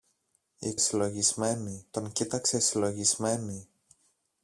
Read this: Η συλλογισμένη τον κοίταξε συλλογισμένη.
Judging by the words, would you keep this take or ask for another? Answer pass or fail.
pass